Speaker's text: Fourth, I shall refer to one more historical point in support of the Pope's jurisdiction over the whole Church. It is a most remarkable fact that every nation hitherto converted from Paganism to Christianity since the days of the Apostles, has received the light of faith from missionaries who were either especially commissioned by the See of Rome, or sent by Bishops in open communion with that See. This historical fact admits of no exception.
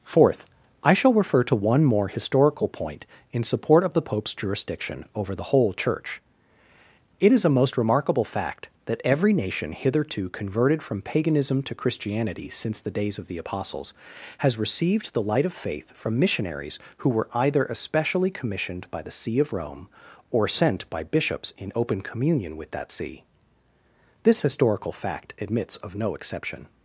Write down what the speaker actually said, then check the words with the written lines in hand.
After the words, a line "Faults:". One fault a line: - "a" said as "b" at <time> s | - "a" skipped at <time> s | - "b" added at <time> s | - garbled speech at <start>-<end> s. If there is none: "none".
Fourth, I shall refer to one more historical point in support of the Pope's jurisdiction over the whole Church. It is a most remarkable fact that every nation hitherto converted from Paganism to Christianity since the days of the Apostles, has received the light of faith from missionaries who were either especially commissioned by the See of Rome, or sent by Bishops in open communion with that See. This historical fact admits of no exception.
Faults:
none